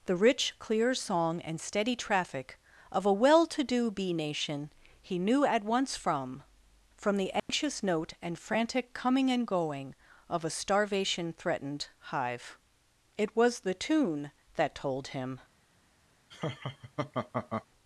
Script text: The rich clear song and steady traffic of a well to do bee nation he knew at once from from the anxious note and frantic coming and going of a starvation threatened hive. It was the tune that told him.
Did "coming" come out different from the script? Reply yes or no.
no